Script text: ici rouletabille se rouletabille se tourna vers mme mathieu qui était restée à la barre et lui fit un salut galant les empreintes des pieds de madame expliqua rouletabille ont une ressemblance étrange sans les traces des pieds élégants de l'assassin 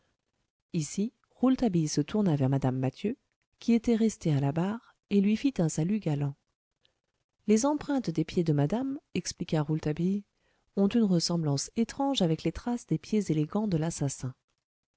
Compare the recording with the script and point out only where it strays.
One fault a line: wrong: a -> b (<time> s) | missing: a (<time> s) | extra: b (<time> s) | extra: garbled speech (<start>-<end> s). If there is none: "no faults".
missing: rouletabille se (2.0 s)
wrong: sans -> avec (12.2 s)